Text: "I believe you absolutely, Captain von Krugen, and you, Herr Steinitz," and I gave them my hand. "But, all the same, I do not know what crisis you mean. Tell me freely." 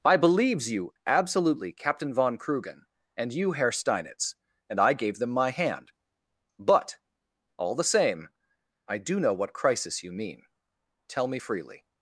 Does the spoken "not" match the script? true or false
false